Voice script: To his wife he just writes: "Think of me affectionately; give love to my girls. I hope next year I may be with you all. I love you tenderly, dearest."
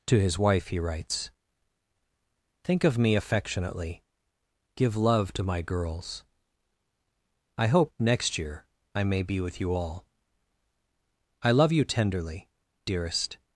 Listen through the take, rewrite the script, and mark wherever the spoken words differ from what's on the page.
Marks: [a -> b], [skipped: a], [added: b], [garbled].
To his wife he [skipped: just] writes: "Think of me affectionately; give love to my girls. I hope next year I may be with you all. I love you tenderly, dearest."